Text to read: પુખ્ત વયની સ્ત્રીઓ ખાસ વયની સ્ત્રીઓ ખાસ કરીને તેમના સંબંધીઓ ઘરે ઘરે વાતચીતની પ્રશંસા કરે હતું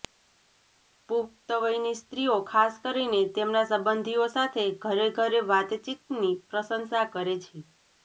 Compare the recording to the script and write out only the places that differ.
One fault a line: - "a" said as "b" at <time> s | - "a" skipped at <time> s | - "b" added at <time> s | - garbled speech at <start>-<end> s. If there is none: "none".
- "વયની સ્ત્રીઓ ખાસ" skipped at 2.8 s
- "સાથે" added at 4.3 s
- "હતું" said as "છે" at 7.4 s